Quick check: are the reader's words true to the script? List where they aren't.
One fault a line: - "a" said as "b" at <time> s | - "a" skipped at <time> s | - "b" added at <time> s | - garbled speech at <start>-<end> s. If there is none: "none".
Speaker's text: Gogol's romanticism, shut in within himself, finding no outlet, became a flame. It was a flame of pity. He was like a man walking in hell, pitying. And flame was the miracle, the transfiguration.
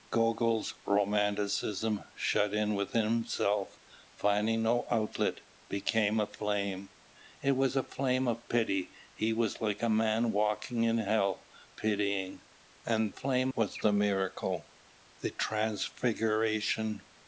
none